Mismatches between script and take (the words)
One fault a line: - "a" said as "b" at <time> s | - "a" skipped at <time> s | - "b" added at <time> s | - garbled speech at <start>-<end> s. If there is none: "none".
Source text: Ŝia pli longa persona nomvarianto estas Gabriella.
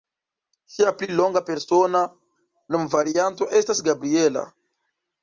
none